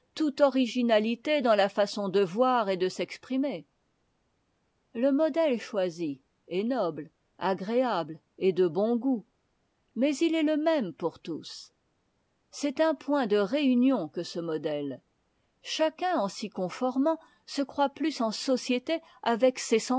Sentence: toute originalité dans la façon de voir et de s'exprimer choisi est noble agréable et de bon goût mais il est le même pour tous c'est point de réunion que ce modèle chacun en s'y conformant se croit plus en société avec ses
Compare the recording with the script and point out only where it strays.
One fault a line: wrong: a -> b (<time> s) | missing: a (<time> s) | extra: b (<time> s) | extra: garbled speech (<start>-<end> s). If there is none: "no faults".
extra: le modèle (4.9 s)
extra: un (12.8 s)